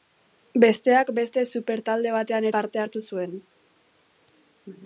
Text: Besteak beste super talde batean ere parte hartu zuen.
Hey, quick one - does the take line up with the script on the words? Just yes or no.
no